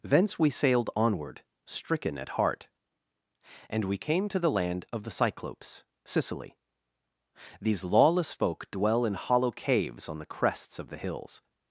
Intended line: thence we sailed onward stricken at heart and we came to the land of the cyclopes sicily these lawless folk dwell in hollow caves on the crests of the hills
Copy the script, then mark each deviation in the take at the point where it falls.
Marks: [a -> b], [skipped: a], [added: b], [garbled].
thence we sailed onward stricken at heart and we came to the land of the cyclopes sicily these lawless folk dwell in hollow caves on the crests of the hills